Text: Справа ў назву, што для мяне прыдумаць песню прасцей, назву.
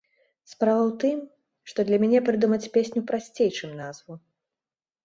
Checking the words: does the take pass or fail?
fail